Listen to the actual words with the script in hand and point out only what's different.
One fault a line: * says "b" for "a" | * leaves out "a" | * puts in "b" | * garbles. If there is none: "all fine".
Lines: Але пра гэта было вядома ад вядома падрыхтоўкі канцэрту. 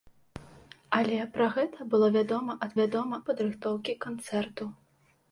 all fine